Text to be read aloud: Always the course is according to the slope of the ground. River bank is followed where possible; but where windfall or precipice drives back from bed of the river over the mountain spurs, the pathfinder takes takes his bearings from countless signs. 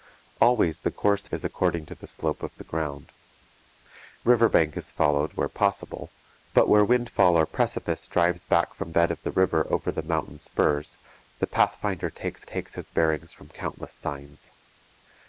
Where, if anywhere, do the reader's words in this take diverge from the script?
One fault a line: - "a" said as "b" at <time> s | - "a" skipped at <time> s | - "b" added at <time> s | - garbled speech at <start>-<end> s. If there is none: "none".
none